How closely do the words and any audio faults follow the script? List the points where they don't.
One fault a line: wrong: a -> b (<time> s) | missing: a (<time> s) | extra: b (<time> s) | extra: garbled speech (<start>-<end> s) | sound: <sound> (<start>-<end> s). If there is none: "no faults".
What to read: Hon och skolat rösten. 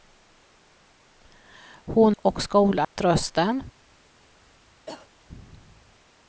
sound: dropout (2.8-3.0 s)
sound: cough (4.9-5.1 s)